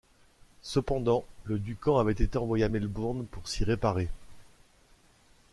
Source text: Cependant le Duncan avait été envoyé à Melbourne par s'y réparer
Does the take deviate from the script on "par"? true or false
true